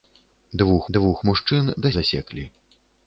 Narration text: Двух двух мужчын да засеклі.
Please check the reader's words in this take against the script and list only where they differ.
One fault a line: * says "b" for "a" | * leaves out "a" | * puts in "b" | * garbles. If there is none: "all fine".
all fine